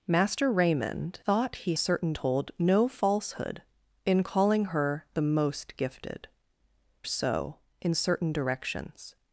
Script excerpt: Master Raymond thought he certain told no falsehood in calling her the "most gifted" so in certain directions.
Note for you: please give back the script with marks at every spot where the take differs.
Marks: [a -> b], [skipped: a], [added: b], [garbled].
Master Raymond thought he certain told no falsehood in calling her the "most gifted" so in certain directions.